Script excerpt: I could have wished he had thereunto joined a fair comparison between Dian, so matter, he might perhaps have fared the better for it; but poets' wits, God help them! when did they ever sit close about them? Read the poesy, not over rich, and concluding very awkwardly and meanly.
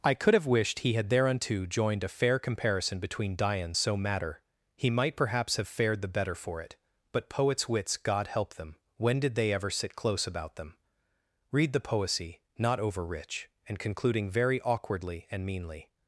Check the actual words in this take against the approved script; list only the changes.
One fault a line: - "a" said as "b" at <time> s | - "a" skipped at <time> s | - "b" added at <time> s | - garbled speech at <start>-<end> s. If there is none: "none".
none